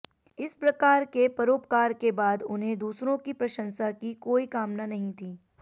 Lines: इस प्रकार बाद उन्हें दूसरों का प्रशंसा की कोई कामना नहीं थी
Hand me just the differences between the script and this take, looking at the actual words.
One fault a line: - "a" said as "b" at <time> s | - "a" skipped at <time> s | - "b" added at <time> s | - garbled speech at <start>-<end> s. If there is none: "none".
- "के परोपकार के" added at 1.1 s
- "का" said as "की" at 3.2 s